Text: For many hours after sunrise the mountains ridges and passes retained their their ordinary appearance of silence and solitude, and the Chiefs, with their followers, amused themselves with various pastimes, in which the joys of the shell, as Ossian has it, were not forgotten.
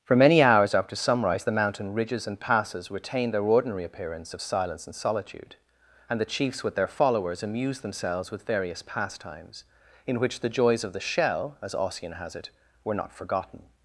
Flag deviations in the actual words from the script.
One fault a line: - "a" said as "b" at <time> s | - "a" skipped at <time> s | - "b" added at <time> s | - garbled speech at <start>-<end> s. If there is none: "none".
- "mountains" said as "mountain" at 1.5 s
- "their" skipped at 3.4 s